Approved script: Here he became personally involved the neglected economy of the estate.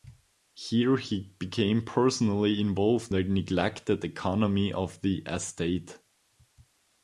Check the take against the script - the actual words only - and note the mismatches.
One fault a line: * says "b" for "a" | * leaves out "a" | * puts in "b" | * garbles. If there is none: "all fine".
all fine